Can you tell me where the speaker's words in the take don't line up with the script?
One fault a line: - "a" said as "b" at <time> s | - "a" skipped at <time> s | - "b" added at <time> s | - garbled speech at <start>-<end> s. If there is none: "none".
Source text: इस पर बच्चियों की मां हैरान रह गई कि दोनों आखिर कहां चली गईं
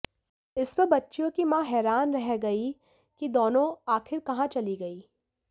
none